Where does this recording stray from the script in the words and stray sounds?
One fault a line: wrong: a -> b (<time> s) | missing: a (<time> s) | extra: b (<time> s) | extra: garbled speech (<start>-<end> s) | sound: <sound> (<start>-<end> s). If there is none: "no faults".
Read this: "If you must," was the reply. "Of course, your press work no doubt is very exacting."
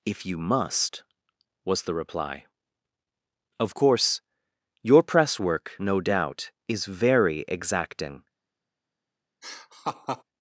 sound: laugh (9.4-10.2 s)